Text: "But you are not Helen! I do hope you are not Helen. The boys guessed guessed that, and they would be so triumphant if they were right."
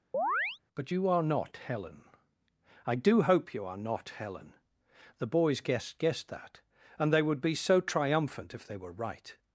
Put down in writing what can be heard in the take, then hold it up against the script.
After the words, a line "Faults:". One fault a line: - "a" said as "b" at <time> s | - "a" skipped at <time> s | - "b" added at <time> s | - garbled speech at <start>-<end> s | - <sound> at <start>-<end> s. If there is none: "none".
"But you are not Helen! I do hope you are not Helen. The boys guessed guessed that, and they would be so triumphant if they were right."
Faults:
- chirp at 0.1-0.6 s